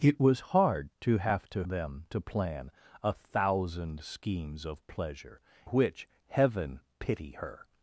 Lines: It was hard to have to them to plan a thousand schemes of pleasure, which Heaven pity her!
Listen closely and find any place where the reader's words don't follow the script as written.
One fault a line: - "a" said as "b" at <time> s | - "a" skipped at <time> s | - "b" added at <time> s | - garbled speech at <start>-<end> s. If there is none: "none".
none